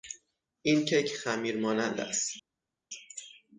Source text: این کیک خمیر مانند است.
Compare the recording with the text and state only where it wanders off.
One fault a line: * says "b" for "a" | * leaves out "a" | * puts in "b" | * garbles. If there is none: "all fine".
all fine